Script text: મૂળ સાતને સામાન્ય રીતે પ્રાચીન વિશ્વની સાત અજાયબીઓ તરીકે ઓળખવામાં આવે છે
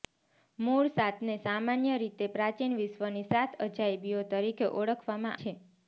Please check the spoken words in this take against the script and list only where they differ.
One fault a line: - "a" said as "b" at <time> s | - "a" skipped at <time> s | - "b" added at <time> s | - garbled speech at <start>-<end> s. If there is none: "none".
- "આવે" skipped at 5.4 s